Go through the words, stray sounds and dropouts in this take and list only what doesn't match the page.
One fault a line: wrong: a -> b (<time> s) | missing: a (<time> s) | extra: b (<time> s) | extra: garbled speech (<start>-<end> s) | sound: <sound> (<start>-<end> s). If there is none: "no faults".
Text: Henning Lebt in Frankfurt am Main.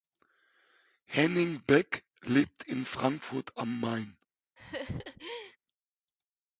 extra: Beck (1.6 s)
sound: laugh (4.6-5.6 s)